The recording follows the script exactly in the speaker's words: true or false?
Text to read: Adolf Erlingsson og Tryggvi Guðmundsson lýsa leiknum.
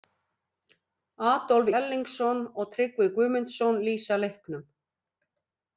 true